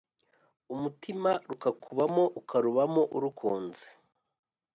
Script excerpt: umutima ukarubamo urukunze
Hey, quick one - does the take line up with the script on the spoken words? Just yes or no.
no